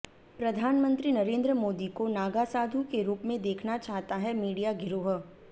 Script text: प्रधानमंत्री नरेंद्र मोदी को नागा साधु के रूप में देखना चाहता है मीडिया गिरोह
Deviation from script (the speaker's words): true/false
false